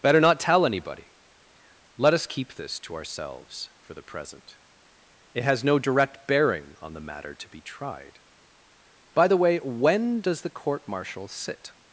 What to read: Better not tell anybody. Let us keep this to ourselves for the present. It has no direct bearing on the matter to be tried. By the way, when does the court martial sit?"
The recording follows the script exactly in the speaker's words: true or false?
true